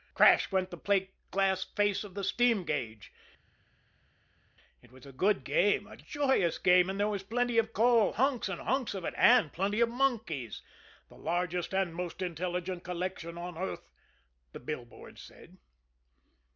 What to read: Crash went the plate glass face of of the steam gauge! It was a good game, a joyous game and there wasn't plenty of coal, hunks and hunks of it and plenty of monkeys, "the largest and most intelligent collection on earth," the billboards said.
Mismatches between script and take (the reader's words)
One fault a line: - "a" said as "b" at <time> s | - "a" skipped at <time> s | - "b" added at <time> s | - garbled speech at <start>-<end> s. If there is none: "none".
- "of" skipped at 2.1 s
- "wasn't" said as "was" at 7.1 s